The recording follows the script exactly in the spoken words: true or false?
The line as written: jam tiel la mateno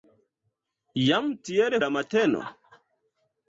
true